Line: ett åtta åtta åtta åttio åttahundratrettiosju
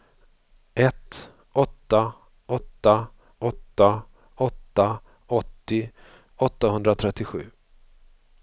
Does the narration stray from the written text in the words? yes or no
yes